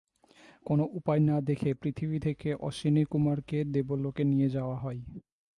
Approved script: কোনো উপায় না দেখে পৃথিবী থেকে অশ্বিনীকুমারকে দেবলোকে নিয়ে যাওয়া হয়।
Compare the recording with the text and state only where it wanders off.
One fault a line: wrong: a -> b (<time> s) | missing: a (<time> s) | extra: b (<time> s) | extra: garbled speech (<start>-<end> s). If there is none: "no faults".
no faults